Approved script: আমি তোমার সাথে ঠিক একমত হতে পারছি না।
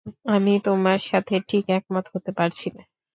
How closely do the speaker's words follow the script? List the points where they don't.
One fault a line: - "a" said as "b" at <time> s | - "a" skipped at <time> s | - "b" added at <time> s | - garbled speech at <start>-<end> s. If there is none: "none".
none